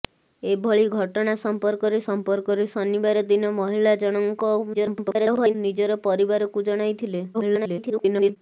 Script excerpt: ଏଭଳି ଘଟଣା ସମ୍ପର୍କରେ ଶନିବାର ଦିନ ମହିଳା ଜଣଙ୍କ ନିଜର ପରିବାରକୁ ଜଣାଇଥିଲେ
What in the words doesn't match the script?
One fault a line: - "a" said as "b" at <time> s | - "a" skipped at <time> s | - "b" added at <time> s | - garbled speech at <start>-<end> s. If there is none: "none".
- "ସମ୍ପର୍କରେ" added at 2.0 s
- garbled speech at 4.7-5.6 s
- garbled speech at 7.3-8.4 s